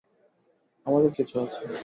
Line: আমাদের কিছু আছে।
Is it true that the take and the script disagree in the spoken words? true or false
false